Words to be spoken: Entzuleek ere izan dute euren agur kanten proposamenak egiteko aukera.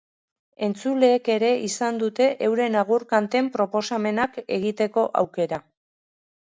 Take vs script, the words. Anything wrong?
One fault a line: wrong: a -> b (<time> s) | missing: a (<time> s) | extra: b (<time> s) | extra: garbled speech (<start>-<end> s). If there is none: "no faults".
no faults